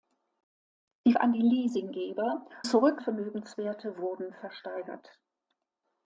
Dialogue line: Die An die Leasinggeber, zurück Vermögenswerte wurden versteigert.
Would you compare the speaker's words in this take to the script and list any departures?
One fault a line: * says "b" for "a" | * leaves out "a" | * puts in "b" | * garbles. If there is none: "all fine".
all fine